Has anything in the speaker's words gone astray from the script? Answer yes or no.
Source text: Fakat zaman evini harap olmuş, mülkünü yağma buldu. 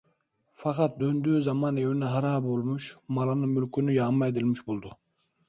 yes